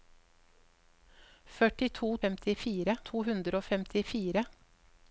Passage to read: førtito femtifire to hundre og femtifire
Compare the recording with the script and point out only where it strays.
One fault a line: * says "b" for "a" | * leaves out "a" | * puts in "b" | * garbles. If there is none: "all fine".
all fine